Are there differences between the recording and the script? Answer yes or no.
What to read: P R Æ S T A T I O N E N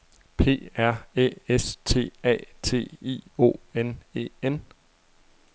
no